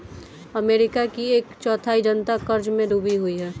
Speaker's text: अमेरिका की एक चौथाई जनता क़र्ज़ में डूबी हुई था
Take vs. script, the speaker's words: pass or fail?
fail